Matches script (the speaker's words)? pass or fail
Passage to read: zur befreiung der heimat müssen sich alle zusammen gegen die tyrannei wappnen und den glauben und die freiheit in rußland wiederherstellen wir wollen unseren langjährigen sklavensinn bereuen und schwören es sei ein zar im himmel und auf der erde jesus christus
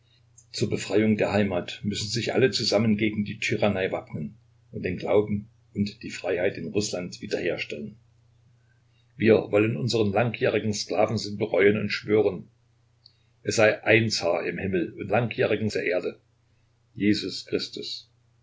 fail